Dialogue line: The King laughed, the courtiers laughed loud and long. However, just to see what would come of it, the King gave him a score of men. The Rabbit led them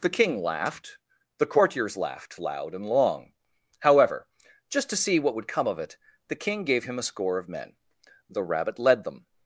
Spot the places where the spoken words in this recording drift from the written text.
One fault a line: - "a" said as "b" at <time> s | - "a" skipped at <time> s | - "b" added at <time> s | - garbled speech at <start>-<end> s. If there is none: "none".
none